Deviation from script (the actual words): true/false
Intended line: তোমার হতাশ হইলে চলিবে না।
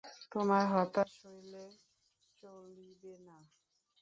false